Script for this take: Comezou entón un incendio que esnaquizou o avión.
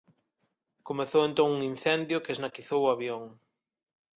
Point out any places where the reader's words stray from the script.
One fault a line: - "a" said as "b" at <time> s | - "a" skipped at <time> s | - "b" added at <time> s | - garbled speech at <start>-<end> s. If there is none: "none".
none